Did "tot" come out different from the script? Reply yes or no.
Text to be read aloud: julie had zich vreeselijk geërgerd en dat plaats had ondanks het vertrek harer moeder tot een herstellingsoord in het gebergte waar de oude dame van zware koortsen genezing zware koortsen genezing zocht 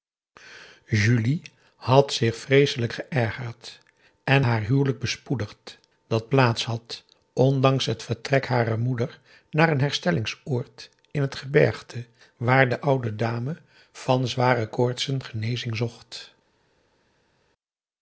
yes